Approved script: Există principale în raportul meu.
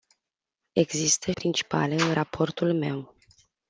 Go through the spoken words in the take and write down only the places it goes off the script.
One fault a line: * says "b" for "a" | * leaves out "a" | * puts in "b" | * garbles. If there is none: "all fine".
all fine